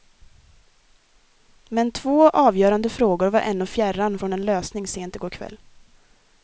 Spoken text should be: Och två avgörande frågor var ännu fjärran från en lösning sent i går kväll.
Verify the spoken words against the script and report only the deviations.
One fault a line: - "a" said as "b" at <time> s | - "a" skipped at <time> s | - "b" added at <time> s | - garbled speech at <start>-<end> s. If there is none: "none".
- "Och" said as "Men" at 1.7 s